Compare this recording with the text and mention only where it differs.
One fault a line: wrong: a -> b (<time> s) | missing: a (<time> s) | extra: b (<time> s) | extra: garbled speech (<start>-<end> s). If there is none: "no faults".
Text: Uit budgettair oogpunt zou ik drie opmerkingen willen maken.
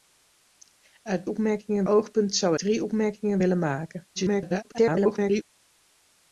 wrong: budgettair -> opmerkingen (1.3 s)
missing: ik (2.6 s)
extra: garbled speech (4.1-5.4 s)